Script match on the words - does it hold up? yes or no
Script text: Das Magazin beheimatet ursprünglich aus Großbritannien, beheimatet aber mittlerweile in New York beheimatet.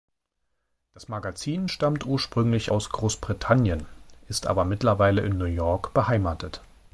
no